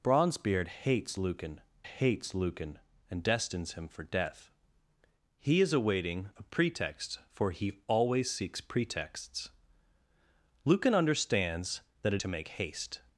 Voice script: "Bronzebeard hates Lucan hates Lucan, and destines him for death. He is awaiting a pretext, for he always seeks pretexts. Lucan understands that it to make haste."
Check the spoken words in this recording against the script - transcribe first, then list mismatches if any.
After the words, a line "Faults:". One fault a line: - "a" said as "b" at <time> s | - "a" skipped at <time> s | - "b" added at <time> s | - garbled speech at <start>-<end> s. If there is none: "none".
"Bronzebeard hates Lucan hates Lucan, and destines him for death. He is awaiting a pretext, for he always seeks pretexts. Lucan understands that it to make haste."
Faults:
none